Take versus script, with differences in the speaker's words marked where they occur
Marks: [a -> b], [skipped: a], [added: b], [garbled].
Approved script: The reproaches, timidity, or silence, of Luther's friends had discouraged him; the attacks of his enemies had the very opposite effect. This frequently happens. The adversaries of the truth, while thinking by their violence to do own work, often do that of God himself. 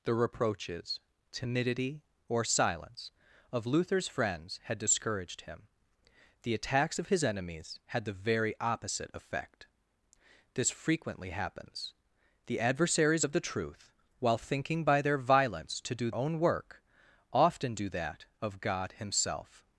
The reproaches, timidity, or silence, of Luther's friends had discouraged him; the attacks of his enemies had the very opposite effect. This frequently happens. The adversaries of the truth, while thinking by their violence to do own work, often do that of God himself.